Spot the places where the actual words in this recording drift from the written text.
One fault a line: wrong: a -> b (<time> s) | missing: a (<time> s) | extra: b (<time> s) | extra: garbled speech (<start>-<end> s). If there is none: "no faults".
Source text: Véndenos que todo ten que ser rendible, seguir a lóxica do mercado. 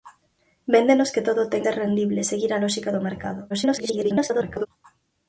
missing: que (1.6 s)
extra: garbled speech (3.5-4.7 s)